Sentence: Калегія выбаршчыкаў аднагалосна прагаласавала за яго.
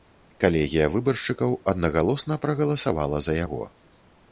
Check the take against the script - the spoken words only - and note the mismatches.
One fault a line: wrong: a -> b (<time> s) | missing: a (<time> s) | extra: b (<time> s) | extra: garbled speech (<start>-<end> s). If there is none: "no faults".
no faults